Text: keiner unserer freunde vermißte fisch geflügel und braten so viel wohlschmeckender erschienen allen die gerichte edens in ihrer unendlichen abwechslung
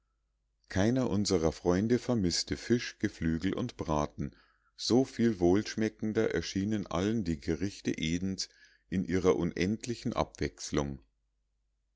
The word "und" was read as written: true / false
true